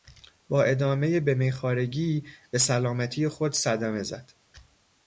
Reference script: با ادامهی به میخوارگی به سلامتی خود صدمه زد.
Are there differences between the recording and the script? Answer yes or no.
no